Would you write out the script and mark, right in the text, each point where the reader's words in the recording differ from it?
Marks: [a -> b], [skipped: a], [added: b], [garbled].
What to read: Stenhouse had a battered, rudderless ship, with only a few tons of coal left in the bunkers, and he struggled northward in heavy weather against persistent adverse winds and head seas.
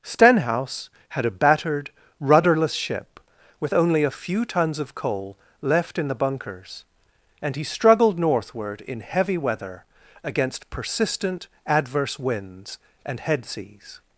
Stenhouse had a battered, rudderless ship, with only a few tons of coal left in the bunkers, and he struggled northward in heavy weather against persistent adverse winds and head seas.